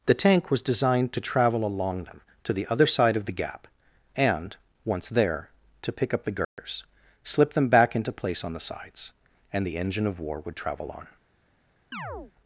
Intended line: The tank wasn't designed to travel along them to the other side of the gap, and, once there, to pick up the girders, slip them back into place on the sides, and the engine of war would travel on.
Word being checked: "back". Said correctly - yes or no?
yes